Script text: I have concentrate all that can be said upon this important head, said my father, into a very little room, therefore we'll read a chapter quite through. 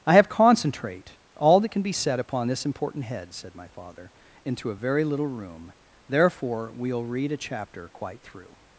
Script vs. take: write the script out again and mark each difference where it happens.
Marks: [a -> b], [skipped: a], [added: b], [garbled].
I have concentrate all that can be said upon this important head, said my father, into a very little room, therefore we'll read a chapter quite through.